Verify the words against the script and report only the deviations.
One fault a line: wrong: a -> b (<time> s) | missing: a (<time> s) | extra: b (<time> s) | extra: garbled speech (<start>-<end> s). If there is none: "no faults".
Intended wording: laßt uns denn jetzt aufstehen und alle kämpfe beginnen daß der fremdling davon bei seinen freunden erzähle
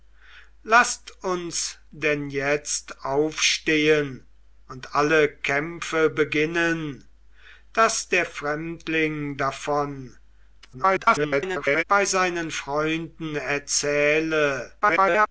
extra: garbled speech (10.6-11.8 s)
extra: garbled speech (14.8-15.3 s)